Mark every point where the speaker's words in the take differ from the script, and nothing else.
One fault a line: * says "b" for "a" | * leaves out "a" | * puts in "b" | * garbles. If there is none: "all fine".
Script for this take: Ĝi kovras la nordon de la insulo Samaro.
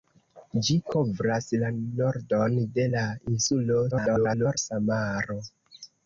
* garbles